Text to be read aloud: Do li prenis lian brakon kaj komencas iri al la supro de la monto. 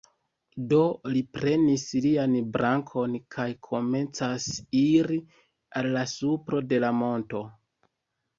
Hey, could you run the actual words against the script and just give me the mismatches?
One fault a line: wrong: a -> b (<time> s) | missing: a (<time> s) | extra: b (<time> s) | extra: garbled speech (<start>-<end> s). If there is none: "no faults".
no faults